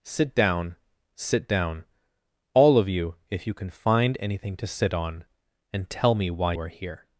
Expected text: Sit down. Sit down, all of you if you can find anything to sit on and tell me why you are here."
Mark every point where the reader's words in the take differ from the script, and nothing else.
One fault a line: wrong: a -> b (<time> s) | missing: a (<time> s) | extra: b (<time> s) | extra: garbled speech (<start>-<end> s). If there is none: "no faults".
missing: you (6.5 s)